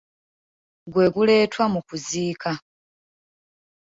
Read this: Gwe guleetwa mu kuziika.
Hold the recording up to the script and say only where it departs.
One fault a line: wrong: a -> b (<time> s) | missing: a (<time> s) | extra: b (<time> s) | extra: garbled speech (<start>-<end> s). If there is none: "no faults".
no faults